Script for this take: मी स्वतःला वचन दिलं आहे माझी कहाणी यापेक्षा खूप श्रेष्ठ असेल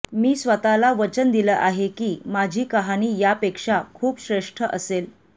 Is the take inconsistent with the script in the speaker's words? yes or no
yes